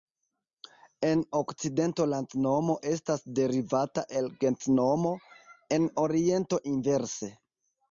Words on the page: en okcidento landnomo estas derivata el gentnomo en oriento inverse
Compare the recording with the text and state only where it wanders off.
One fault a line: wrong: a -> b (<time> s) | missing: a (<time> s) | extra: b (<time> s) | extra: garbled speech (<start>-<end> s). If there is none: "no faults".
no faults